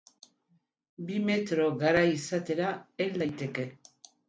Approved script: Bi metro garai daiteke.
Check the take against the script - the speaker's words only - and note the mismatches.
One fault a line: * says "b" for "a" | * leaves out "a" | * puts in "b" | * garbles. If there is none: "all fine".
* puts in "izatera hel"